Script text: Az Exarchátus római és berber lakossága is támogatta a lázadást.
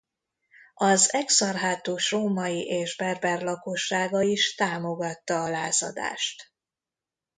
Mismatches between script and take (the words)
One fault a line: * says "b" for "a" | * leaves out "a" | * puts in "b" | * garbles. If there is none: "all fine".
all fine